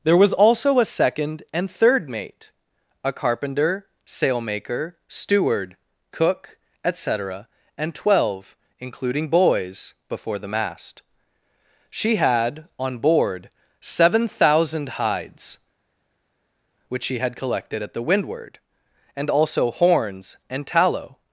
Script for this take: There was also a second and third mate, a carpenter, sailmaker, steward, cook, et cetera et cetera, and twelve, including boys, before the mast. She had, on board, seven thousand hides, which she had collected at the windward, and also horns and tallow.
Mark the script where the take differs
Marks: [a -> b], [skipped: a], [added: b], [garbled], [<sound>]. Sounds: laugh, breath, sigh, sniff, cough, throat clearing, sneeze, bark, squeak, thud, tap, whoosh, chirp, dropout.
There was also a second and third mate, a carpenter, sailmaker, steward, cook, et cetera [skipped: et cetera,] and twelve, including boys, before the mast. She had, on board, seven thousand hides, which she had collected at the windward, and also horns and tallow.